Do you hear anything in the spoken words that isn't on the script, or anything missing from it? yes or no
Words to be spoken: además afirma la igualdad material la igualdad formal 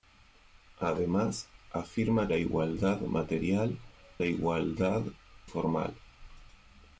no